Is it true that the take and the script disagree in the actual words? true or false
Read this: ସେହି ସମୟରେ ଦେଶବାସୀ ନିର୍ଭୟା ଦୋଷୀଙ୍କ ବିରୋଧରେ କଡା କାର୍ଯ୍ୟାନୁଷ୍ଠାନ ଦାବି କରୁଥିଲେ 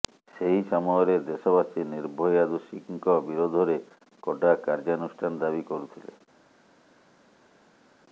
false